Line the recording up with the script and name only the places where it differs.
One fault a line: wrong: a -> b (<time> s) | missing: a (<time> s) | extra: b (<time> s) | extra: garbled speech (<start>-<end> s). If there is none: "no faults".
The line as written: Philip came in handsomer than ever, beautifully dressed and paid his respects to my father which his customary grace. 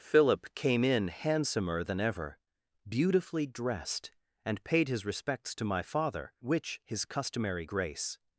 no faults